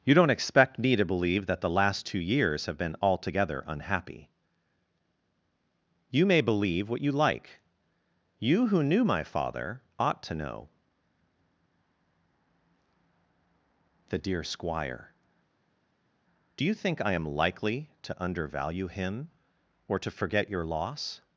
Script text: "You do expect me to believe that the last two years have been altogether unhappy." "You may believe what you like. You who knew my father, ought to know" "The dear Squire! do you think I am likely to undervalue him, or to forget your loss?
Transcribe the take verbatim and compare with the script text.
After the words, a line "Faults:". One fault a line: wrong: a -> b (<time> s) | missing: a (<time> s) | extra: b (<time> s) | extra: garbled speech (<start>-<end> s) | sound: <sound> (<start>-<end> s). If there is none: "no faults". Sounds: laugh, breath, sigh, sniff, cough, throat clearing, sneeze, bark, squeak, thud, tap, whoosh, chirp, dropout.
"You don't expect me to believe that the last two years have been altogether unhappy." "You may believe what you like. You who knew my father, ought to know" "The dear Squire! do you think I am likely to undervalue him, or to forget your loss?
Faults:
wrong: do -> don't (0.1 s)